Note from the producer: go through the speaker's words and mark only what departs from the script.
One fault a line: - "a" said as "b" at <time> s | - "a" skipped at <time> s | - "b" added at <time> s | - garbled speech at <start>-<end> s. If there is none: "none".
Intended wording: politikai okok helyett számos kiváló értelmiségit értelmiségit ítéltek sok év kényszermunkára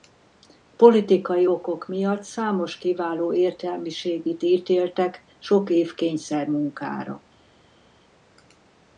- "helyett" said as "miatt" at 1.9 s
- "értelmiségit" skipped at 4.4 s